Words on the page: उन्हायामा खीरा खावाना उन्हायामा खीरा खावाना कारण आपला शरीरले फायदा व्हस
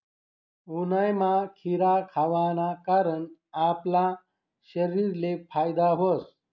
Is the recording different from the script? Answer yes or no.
yes